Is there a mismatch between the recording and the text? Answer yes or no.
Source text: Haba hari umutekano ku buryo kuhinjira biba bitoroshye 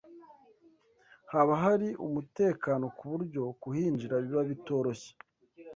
no